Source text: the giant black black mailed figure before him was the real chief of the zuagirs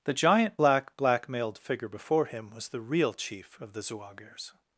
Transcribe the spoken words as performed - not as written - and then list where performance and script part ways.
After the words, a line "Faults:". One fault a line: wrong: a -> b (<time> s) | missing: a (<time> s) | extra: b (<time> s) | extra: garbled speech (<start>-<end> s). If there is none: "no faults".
the giant black black mailed figure before him was the real chief of the zuagirs
Faults:
no faults